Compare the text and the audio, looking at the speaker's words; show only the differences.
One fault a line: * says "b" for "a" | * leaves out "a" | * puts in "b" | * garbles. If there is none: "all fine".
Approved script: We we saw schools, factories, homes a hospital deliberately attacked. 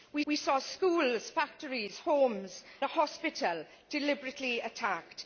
all fine